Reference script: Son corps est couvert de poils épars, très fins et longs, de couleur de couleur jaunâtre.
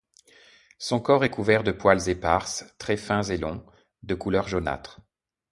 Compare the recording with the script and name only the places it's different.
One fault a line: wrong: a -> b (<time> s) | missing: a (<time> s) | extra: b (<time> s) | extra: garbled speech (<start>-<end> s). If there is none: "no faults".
missing: de couleur (4.5 s)